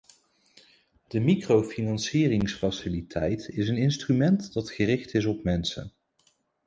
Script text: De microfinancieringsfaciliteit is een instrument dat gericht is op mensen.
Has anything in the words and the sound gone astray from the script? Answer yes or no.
no